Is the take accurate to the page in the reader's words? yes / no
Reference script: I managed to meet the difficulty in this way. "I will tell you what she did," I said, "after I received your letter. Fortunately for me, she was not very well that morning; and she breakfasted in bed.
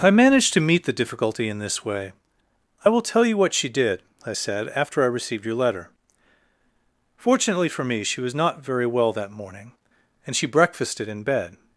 yes